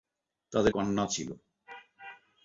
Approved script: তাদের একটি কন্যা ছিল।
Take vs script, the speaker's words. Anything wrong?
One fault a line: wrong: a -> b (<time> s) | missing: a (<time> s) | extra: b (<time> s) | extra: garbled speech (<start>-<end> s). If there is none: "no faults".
missing: একটি (0.7 s)